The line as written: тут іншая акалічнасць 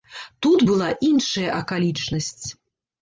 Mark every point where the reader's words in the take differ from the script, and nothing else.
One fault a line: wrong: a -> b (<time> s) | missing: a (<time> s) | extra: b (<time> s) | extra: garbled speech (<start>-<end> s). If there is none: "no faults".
extra: была (0.7 s)